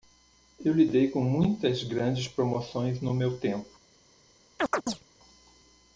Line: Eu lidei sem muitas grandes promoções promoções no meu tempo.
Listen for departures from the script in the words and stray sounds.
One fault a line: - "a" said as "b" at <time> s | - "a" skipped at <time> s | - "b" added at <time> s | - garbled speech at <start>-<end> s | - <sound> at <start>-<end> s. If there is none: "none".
- "sem" said as "com" at 1.1 s
- "promoções" skipped at 3.0 s
- chirp at 4.6-5.0 s